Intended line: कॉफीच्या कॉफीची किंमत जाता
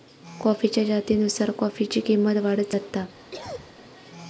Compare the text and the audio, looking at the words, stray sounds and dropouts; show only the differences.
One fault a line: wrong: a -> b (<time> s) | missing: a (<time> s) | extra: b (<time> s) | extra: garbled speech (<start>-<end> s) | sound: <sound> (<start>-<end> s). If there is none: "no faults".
extra: जातीनुसार (0.8 s)
extra: वाढत (2.4 s)
sound: cough (3.3-3.8 s)